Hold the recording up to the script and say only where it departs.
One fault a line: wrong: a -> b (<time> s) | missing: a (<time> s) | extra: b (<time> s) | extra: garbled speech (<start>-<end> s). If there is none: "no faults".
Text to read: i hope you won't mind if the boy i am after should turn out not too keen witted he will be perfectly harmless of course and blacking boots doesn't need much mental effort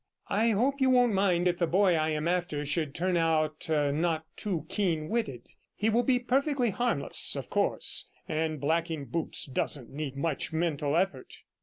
no faults